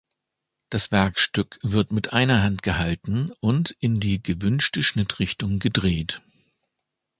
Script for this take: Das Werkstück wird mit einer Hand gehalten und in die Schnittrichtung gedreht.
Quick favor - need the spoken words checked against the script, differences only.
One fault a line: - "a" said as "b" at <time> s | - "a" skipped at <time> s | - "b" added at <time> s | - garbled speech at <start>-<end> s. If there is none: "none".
- "gewünschte" added at 4.2 s